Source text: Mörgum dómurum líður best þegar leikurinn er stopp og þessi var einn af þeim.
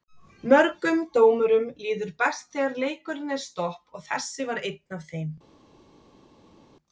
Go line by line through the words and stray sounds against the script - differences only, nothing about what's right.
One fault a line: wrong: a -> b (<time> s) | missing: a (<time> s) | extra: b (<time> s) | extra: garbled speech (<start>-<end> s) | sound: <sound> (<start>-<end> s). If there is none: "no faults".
no faults